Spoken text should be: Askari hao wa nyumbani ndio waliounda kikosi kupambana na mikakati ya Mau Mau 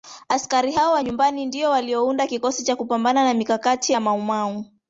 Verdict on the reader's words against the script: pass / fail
fail